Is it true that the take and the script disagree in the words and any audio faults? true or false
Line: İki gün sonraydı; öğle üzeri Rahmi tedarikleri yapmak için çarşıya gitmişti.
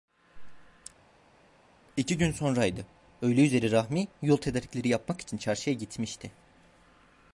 true